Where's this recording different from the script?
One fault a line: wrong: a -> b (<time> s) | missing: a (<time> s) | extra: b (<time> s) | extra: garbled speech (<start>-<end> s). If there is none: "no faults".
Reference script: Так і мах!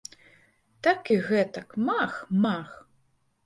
extra: гэтак мах (1.3 s)